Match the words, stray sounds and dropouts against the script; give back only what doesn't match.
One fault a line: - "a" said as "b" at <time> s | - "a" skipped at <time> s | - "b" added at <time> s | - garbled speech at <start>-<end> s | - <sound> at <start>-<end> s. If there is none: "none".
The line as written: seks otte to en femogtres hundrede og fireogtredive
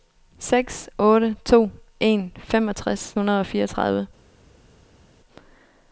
none